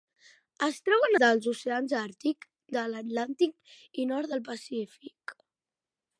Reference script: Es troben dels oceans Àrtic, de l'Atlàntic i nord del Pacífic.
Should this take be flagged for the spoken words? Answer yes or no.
no